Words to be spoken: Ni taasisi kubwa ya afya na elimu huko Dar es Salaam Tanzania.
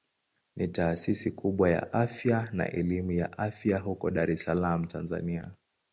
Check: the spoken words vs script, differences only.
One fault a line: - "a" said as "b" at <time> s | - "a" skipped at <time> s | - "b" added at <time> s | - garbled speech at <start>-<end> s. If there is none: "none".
- "ya afya" added at 3.1 s